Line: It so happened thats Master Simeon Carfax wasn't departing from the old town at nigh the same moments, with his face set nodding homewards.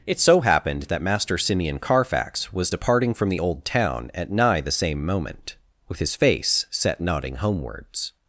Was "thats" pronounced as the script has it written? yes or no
no